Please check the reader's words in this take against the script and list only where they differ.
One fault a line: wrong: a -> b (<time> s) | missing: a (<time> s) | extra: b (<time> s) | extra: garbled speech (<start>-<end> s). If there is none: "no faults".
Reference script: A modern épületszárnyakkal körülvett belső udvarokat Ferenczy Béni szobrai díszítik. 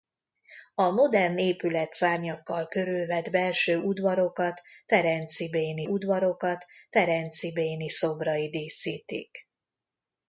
extra: udvarokat Ferenczy Béni (5.8 s)